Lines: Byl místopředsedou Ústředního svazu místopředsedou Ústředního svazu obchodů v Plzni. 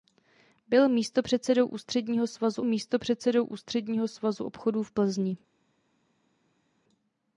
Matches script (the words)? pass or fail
pass